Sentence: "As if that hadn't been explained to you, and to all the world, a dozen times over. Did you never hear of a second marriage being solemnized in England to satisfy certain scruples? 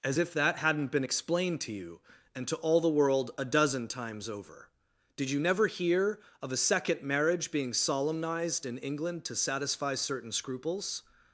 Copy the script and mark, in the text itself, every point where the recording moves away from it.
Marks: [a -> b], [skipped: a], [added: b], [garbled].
"As if that hadn't been explained to you, and to all the world, a dozen times over. Did you never hear of a second marriage being solemnized in England to satisfy certain scruples?